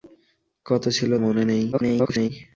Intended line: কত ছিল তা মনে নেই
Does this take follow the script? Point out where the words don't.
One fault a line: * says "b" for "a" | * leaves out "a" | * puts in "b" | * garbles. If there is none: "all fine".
* leaves out "তা"
* garbles